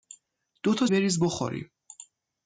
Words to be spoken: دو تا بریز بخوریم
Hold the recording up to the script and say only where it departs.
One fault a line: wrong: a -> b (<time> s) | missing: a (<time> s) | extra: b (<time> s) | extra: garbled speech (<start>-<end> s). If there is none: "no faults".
no faults